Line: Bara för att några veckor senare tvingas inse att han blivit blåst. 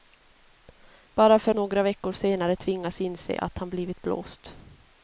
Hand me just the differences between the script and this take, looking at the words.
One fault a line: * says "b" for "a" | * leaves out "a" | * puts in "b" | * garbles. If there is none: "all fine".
* leaves out "att"